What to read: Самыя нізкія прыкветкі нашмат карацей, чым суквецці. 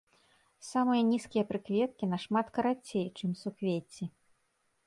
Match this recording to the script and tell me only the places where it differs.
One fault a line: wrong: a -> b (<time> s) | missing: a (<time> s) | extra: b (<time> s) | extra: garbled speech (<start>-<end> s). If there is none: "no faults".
no faults